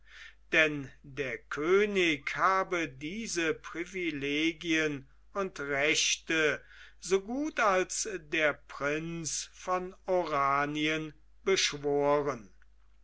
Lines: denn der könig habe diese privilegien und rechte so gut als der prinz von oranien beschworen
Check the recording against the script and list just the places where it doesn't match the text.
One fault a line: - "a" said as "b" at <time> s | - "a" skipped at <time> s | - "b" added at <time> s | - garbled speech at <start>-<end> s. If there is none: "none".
none